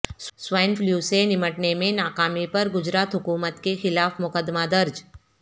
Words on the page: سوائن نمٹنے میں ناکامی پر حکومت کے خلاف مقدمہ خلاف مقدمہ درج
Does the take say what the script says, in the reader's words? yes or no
no